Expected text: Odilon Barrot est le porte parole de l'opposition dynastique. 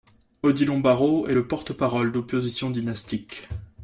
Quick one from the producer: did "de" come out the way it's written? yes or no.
no